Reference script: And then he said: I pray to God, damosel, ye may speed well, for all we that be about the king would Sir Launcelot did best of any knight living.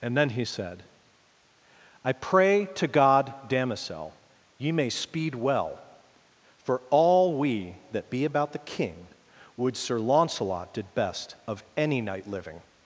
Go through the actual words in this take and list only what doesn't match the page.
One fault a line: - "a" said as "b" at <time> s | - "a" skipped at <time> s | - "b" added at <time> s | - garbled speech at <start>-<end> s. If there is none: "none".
none